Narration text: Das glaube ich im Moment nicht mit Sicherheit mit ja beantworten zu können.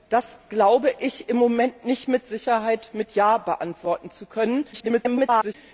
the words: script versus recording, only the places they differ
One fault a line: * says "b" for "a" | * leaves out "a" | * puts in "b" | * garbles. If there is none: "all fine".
* garbles